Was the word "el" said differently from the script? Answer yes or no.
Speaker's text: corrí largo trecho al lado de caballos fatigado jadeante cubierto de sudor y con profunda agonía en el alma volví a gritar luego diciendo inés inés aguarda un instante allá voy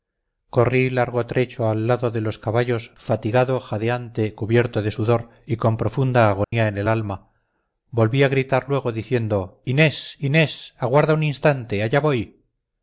no